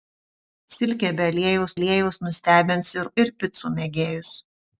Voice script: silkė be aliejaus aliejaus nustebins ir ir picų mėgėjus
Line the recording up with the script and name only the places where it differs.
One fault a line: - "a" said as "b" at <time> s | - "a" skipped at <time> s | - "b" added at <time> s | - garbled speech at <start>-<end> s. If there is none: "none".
none